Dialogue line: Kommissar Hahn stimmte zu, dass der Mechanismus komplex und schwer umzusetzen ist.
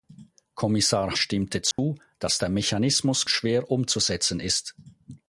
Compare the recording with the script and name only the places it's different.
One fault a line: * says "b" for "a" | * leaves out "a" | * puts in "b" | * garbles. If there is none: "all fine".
* leaves out "Hahn"
* leaves out "komplex und"